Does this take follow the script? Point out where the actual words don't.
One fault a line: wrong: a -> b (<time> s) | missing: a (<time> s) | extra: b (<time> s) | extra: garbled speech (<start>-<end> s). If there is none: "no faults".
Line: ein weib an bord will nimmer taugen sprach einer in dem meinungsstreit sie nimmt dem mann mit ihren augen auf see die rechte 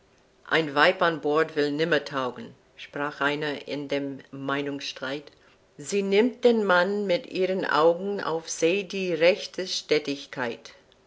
no faults